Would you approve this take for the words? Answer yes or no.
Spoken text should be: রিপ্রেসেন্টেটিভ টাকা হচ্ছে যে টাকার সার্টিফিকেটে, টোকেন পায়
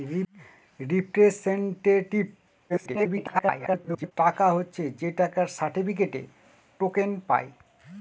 no